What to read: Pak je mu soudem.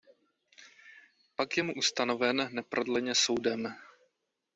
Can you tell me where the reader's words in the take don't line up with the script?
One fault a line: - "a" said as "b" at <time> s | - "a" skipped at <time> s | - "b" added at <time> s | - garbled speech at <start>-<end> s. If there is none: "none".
- "ustanoven neprodleně" added at 1.7 s